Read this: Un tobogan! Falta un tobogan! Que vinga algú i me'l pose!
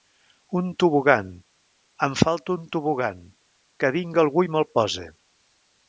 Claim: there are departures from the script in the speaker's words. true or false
true